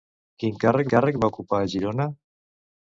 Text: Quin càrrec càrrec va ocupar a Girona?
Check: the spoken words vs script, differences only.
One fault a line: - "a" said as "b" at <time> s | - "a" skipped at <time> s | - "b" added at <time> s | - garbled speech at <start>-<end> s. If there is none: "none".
none